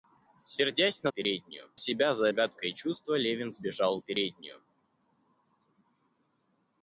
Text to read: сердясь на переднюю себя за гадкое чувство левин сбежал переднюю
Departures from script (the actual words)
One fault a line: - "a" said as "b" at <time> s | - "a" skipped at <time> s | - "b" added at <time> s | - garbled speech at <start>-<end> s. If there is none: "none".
none